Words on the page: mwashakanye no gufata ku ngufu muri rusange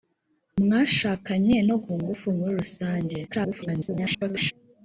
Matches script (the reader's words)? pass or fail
fail